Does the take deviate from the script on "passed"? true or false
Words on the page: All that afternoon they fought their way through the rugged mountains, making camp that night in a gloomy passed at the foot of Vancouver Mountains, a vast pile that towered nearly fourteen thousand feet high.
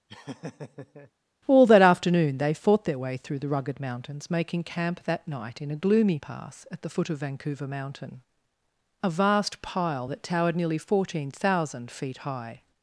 true